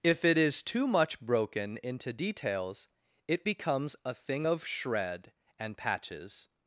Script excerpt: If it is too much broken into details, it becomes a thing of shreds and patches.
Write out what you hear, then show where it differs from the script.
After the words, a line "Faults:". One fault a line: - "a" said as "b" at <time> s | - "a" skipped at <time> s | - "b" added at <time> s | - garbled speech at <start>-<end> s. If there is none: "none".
If it is too much broken into details, it becomes a thing of shred and patches.
Faults:
- "shreds" said as "shred" at 4.6 s